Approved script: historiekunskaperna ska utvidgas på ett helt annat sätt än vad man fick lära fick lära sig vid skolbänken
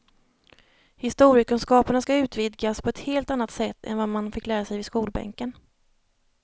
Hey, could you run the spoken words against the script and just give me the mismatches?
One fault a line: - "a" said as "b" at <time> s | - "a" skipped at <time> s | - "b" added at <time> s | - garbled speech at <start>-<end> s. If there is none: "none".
- "fick lära" skipped at 4.6 s